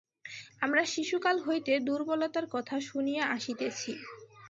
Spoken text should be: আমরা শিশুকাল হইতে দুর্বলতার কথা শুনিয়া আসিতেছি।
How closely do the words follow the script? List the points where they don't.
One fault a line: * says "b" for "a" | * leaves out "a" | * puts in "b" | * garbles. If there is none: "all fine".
all fine